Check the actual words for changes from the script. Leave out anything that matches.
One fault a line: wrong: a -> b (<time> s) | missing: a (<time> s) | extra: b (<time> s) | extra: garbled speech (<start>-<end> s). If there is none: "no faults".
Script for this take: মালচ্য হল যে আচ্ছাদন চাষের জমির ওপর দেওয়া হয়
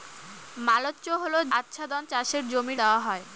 missing: যে (1.4 s)
missing: ওপর (2.8 s)